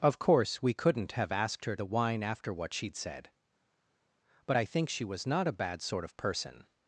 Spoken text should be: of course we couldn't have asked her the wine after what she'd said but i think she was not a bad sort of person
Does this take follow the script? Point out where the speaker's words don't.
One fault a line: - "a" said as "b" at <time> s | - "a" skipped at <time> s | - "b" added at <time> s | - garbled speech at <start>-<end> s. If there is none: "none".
none